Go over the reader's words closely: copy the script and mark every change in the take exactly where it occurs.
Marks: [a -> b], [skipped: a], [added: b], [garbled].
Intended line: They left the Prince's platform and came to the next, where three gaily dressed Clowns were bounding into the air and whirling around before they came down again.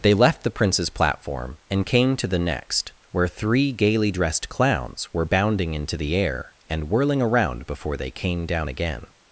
They left the Prince's platform and came to the next, where three gaily dressed Clowns were bounding into the air and whirling around before they came down again.